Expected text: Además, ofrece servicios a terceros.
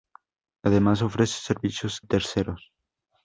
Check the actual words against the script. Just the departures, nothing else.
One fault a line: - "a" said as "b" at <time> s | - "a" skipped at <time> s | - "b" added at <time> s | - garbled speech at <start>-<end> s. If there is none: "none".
- "a" skipped at 2.0 s